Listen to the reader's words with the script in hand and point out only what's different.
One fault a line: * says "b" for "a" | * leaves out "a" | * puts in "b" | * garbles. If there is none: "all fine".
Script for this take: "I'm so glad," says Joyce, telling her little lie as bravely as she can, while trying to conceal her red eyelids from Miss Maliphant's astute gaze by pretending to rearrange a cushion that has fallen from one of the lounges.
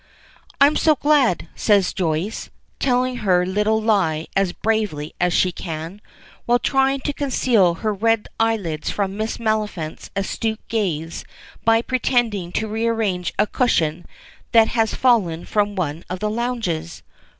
all fine